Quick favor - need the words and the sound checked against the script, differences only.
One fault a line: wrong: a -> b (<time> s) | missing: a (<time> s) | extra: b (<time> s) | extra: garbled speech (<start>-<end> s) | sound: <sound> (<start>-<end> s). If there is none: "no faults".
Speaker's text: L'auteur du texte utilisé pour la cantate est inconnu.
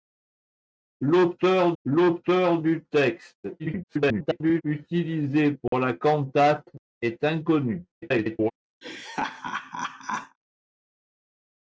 extra: l'auteur (1.8 s)
extra: garbled speech (3.6-4.6 s)
sound: dropout (5.7-5.7 s)
extra: garbled speech (7.9-8.5 s)
sound: laugh (8.8-10.4 s)